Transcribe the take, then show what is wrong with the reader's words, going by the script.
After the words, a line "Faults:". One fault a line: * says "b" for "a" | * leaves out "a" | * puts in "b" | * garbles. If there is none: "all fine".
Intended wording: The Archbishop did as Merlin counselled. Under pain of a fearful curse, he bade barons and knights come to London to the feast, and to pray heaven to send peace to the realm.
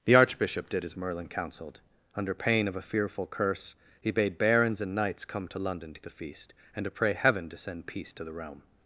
The Archbishop did as Merlin counselled. Under pain of a fearful curse, he bade barons and knights come to London to the feast, and to pray heaven to send peace to the realm.
Faults:
all fine